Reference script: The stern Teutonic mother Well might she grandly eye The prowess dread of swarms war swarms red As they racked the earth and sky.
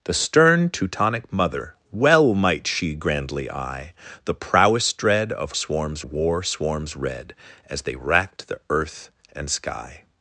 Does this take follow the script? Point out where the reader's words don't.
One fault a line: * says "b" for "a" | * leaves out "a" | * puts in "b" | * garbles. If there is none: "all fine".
all fine